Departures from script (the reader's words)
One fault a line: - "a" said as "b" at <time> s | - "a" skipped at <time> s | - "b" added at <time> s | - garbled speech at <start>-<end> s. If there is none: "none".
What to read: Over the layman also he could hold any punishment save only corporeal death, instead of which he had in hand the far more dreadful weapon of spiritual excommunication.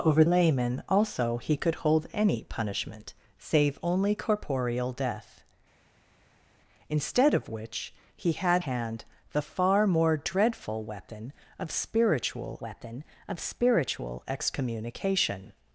- "the" skipped at 0.2 s
- "in" skipped at 8.6 s
- "weapon of spiritual" added at 12.6 s